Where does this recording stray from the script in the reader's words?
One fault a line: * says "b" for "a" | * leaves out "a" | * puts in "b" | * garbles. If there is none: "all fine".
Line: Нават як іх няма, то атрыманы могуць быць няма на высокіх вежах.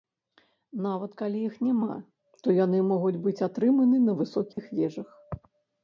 * says "калі" for "як"
* says "яны" for "атрыманы"
* says "атрыманы" for "няма"